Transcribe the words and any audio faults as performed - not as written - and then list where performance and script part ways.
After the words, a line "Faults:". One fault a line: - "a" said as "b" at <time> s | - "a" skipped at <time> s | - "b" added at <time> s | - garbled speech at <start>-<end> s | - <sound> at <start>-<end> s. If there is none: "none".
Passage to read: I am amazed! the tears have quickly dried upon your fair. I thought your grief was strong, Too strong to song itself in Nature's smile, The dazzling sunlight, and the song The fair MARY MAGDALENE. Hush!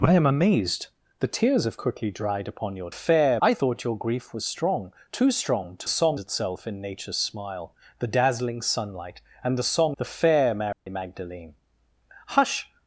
I am amazed! the tears have quickly dried upon your fair. I thought your grief was strong, Too strong to song itself in Nature's smile, The dazzling sunlight, and the song The fair MARY MAGDALENE. Hush!
Faults:
- dropout at 10.7-10.9 s